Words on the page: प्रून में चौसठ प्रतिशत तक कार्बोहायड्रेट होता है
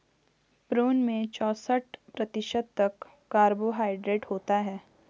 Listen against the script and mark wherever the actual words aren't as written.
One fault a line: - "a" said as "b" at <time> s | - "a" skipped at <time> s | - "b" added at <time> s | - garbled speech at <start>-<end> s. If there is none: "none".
none